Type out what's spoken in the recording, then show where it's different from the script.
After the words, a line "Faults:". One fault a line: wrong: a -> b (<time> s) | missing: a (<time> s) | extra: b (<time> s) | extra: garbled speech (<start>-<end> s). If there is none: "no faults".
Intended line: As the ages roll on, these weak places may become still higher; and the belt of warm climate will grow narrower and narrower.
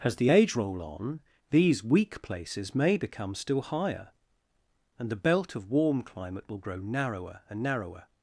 As the age roll on, these weak places may become still higher; and the belt of warm climate will grow narrower and narrower.
Faults:
wrong: ages -> age (0.3 s)